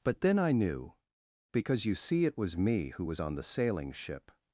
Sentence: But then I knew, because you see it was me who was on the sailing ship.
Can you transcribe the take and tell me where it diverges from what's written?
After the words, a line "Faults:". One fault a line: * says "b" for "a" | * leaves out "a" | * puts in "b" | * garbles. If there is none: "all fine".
But then I knew, because you see it was me who was on the sailing ship.
Faults:
all fine